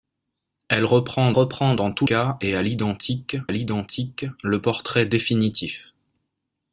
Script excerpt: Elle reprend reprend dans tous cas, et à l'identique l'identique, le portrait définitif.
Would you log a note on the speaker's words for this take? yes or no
no